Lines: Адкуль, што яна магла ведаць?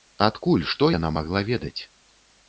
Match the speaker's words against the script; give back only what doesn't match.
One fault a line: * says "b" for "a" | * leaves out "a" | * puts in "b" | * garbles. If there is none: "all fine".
all fine